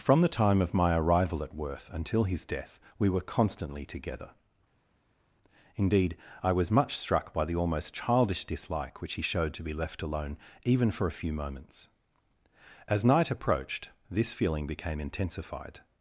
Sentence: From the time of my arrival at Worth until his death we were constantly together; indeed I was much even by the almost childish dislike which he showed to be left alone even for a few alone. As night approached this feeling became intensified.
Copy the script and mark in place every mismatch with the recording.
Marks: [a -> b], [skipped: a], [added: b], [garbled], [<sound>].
From the time of my arrival at Worth until his death we were constantly together; indeed I was much [even -> struck] by the almost childish dislike which he showed to be left alone even for a few [alone. -> moments] As night approached this feeling became intensified.